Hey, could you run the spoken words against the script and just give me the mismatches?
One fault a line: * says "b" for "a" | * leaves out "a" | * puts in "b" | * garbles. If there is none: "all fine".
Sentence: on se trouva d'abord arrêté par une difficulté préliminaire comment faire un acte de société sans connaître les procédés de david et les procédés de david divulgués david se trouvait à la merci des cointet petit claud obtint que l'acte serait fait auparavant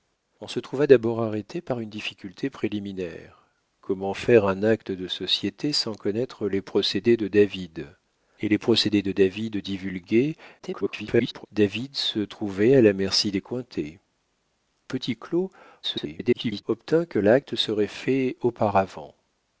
* garbles
* garbles